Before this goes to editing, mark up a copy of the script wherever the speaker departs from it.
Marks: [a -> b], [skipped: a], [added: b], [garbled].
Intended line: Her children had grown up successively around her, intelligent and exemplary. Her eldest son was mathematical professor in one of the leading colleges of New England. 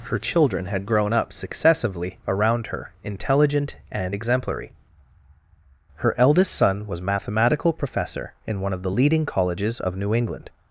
Her children had grown up successively around her, intelligent and exemplary. Her eldest son was mathematical professor in one of the leading colleges of New England.